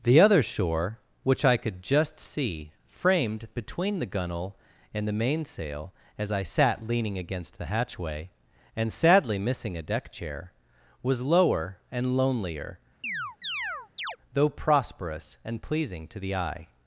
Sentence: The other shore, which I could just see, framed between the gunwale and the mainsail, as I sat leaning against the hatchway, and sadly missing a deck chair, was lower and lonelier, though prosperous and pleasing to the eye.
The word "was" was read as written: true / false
true